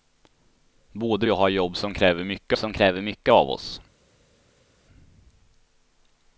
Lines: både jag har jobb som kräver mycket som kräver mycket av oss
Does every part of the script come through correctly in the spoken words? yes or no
yes